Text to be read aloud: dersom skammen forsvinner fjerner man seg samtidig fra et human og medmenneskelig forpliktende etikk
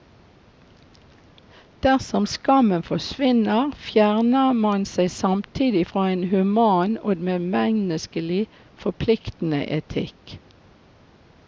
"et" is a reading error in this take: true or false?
true